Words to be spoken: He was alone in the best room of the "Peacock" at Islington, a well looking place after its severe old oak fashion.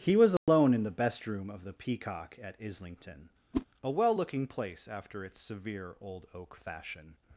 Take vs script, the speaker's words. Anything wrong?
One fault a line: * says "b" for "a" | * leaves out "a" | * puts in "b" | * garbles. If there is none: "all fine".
all fine